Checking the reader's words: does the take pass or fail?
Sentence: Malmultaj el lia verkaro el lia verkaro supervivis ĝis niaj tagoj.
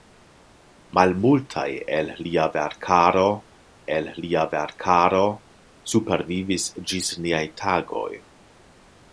pass